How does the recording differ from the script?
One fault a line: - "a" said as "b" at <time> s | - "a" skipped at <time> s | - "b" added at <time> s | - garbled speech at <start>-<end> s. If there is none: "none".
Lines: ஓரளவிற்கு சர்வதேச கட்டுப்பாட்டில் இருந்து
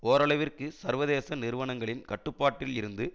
- "நிறுவனங்களின்" added at 1.4 s